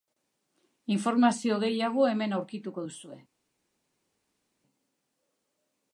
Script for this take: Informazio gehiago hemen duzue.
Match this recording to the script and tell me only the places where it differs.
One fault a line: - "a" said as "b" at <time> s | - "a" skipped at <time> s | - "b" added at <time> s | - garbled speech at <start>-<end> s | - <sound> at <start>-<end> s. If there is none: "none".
- "aurkituko" added at 2.4 s